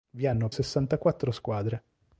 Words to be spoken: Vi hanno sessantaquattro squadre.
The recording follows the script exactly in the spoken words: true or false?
true